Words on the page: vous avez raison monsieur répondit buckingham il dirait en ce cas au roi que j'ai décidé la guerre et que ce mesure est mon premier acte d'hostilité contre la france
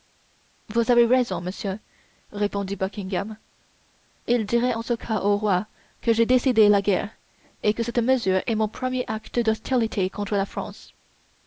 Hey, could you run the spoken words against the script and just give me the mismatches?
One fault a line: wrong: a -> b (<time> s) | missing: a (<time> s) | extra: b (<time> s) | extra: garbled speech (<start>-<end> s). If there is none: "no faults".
wrong: ce -> cette (7.8 s)